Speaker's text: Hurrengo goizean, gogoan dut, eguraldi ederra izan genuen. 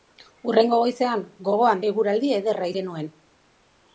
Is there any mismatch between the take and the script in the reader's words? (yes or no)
yes